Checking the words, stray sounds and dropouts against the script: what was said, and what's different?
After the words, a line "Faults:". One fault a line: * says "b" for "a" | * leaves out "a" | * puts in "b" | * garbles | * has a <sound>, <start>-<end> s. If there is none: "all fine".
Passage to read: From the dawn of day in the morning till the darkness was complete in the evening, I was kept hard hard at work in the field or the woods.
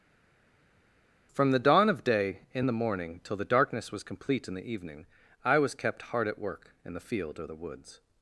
From the dawn of day in the morning till the darkness was complete in the evening, I was kept hard at work in the field or the woods.
Faults:
* leaves out "hard"